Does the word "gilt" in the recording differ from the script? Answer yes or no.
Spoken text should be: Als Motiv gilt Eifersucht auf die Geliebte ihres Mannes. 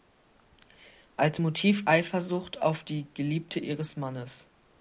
yes